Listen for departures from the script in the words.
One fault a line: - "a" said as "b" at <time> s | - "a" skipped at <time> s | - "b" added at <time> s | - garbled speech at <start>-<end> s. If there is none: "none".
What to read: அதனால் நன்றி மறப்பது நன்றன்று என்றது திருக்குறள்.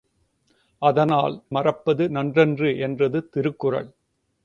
- "நன்றி" skipped at 1.4 s